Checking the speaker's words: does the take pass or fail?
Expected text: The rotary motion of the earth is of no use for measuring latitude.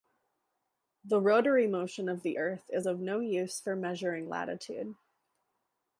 pass